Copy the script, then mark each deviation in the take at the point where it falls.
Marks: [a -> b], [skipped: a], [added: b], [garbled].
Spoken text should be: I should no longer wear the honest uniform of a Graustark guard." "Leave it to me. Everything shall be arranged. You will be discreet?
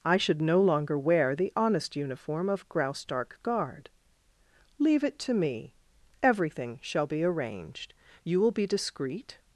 I should no longer wear the honest uniform of [skipped: a] Graustark guard." "Leave it to me. Everything shall be arranged. You will be discreet?